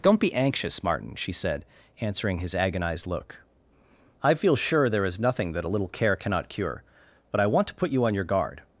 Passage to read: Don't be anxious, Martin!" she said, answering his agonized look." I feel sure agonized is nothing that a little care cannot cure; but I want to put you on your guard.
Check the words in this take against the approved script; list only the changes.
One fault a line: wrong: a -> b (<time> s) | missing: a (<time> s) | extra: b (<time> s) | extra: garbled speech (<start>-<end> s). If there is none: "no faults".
wrong: agonized -> there (4.9 s)